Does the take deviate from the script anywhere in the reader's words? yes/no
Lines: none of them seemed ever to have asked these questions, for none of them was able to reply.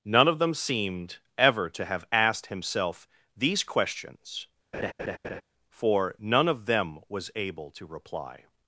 yes